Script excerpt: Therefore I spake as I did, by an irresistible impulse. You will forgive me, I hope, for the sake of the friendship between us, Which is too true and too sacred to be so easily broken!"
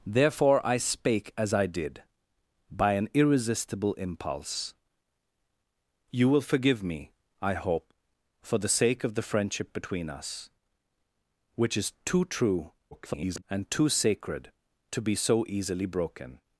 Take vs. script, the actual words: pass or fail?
fail